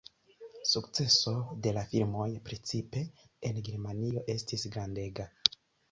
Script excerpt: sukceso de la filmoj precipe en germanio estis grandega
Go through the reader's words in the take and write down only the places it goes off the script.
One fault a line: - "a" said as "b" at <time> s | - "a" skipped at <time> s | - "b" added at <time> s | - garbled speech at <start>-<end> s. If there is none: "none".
none